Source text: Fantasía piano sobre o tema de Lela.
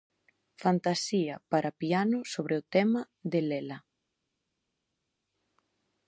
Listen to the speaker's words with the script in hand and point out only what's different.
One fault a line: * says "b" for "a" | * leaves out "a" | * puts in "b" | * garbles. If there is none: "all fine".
* puts in "para"